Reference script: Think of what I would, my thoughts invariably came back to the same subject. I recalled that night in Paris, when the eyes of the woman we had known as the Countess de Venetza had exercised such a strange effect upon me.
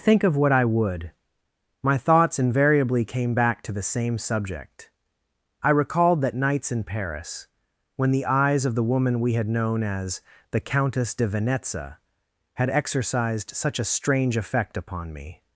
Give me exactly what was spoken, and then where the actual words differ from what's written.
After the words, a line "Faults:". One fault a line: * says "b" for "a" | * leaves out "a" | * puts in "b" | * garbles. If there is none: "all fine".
Think of what I would, my thoughts invariably came back to the same subject. I recalled that nights in Paris, when the eyes of the woman we had known as the Countess de Venetza had exercised such a strange effect upon me.
Faults:
* says "nights" for "night"